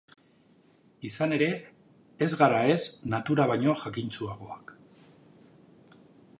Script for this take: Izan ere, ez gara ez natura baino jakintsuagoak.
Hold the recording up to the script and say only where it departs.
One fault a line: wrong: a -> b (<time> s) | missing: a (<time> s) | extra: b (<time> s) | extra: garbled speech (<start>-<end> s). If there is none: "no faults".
no faults